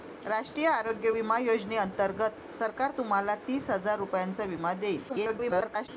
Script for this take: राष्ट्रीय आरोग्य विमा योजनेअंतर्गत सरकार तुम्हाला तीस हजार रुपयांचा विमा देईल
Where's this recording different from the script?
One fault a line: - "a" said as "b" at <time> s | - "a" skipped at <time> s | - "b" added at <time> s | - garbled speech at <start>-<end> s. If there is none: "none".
- garbled speech at 5.1-5.9 s